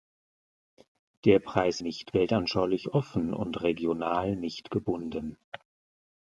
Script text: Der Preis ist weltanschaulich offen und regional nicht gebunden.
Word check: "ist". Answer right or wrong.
wrong